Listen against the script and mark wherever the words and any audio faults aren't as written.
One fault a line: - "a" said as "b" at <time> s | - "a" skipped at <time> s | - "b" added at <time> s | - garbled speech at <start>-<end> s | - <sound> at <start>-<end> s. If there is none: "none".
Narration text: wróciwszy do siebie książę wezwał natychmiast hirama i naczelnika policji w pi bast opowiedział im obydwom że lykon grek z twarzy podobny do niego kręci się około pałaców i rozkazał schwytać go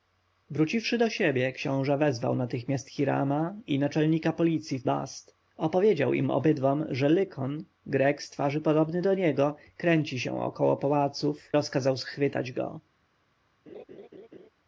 - "pi" skipped at 4.8 s
- "i" skipped at 11.5 s
- laugh at 13.7-14.5 s